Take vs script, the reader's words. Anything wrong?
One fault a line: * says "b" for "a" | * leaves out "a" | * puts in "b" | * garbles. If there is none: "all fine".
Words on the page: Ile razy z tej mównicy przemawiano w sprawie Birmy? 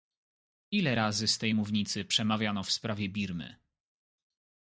all fine